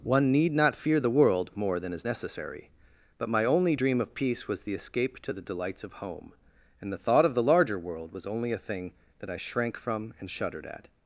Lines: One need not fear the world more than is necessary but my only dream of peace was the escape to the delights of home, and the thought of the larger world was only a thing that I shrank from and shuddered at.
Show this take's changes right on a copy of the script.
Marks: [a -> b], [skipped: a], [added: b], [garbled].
One need not fear the world more than is necessary but my only dream of peace was the escape to the delights of home, and the thought of the larger world was only a thing that I shrank from and shuddered at.